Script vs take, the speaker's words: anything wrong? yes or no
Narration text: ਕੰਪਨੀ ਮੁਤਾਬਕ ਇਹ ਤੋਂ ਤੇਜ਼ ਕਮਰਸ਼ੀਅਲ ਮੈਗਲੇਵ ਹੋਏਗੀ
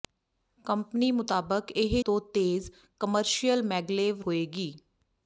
no